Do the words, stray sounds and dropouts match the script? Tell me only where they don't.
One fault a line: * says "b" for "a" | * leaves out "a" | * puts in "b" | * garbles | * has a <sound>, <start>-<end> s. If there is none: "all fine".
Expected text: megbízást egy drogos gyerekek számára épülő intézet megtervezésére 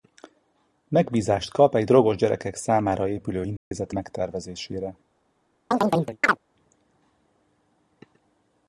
* puts in "kap"
* has a dropout, 3.6-3.7 s
* has a chirp, 5.7-6.4 s